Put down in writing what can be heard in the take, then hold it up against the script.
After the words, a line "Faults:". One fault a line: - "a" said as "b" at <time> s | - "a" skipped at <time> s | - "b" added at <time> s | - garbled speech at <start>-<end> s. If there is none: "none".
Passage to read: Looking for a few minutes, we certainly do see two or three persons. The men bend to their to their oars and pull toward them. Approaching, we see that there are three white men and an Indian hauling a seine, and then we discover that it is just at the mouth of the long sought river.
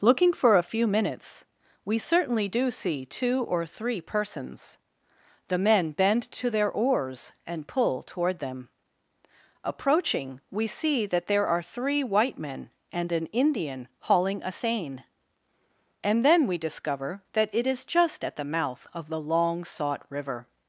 Looking for a few minutes, we certainly do see two or three persons. The men bend to their oars and pull toward them. Approaching, we see that there are three white men and an Indian hauling a seine, and then we discover that it is just at the mouth of the long sought river.
Faults:
- "to their" skipped at 6.7 s